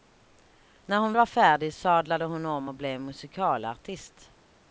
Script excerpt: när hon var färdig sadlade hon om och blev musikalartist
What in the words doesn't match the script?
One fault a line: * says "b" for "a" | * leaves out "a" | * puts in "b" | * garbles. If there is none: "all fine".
all fine